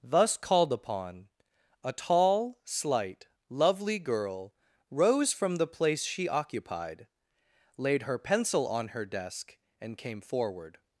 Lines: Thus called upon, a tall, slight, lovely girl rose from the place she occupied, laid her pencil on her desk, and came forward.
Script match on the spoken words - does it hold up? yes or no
yes